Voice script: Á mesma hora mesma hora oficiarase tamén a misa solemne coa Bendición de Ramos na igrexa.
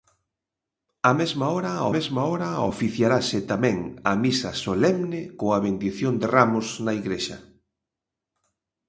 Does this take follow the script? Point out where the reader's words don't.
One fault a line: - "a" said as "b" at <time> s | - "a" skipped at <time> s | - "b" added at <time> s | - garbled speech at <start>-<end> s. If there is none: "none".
none